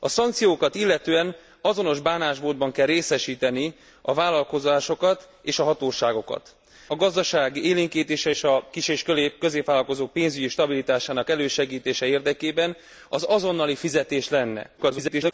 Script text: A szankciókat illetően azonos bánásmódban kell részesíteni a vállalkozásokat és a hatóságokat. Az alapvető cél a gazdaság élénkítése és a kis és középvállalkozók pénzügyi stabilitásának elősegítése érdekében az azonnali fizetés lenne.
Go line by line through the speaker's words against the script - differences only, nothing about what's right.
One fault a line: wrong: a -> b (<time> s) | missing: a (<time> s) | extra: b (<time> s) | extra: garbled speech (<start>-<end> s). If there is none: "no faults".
missing: Az alapvető cél (6.5 s)
extra: garbled speech (14.8-15.3 s)